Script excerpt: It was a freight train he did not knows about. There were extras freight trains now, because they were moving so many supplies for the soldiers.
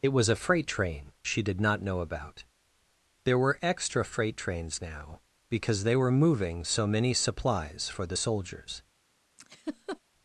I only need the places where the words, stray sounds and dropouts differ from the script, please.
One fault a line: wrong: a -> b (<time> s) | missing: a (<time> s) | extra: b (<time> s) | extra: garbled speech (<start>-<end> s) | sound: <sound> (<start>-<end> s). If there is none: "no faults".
wrong: he -> she (1.2 s)
wrong: knows -> know (1.8 s)
wrong: extras -> extra (3.6 s)
sound: laugh (9.4-10.0 s)